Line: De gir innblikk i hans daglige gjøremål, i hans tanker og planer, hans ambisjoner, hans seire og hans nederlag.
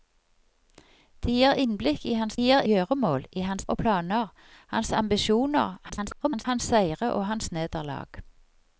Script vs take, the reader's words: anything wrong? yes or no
yes